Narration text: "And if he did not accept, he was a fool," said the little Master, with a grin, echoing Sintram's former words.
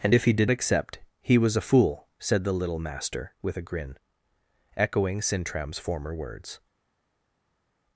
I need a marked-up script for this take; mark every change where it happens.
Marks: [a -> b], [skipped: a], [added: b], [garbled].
"And if he did [skipped: not] accept, he was a fool," said the little Master, with a grin, echoing Sintram's former words.